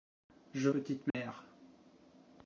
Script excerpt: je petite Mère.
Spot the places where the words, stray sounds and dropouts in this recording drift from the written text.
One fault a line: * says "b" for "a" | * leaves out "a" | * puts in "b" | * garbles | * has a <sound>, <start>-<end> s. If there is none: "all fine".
* has a dropout, 1.1-1.1 s